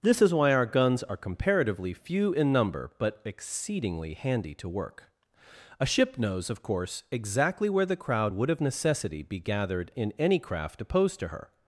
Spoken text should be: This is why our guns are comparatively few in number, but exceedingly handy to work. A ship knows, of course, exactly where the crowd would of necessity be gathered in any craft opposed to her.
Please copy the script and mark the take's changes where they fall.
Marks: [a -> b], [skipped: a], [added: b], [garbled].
This is why our guns are comparatively few in number, but exceedingly handy to work. A ship knows, of course, exactly where the crowd would of necessity be gathered in any craft opposed to her.